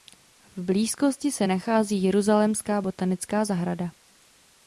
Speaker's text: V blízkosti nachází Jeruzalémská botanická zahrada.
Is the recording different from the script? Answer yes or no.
yes